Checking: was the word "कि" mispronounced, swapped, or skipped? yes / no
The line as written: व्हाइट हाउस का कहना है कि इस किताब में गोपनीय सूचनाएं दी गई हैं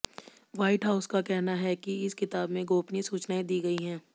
no